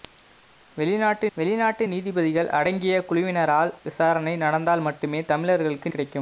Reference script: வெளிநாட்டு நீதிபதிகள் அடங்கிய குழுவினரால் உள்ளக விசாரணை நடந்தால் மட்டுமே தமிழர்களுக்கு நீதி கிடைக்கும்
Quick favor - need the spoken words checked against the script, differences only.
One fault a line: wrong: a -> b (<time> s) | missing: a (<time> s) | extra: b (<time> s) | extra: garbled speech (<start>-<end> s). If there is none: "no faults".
extra: வெளிநாட்டு (1.4 s)
missing: உள்ளக (3.7 s)
missing: நீதி (5.9 s)